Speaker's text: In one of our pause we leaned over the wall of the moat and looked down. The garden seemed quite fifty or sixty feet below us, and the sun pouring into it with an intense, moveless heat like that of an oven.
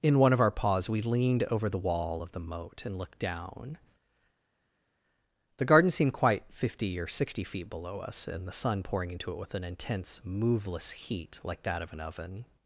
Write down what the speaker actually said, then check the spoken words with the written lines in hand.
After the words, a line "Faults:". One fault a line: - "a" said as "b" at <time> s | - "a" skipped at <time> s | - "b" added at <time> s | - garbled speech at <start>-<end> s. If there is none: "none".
In one of our pause we leaned over the wall of the moat and looked down. The garden seemed quite fifty or sixty feet below us, and the sun pouring into it with an intense, moveless heat like that of an oven.
Faults:
none